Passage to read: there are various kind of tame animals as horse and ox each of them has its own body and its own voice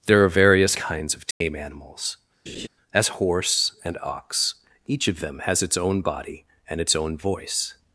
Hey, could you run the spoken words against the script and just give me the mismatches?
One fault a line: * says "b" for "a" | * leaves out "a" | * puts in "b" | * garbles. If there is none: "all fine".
* says "kinds" for "kind"